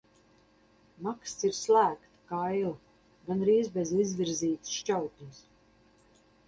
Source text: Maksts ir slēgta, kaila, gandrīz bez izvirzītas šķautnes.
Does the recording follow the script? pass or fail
pass